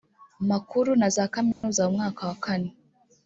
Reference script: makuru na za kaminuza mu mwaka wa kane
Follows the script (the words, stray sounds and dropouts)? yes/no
no